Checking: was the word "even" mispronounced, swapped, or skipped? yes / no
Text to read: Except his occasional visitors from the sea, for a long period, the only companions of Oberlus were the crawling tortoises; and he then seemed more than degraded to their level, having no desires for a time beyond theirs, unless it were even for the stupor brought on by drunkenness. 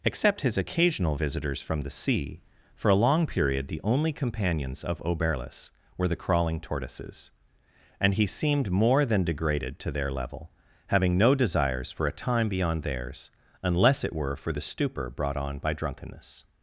yes